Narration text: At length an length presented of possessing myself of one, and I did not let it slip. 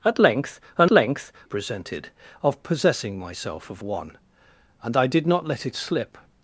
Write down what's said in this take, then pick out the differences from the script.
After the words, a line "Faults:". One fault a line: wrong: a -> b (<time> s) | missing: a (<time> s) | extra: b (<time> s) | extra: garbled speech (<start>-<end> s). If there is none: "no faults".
At length an length presented of possessing myself of one, and I did not let it slip.
Faults:
no faults